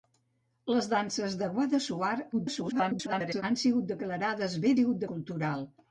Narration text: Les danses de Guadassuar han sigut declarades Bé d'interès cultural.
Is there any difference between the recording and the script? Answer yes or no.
yes